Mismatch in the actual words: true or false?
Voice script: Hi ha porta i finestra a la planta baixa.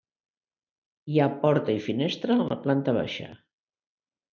false